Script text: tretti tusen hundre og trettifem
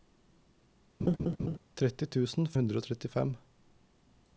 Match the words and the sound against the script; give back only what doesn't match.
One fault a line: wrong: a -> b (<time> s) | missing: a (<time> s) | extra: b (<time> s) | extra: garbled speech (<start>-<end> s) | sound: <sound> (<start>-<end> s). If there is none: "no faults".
sound: laugh (1.0-1.6 s)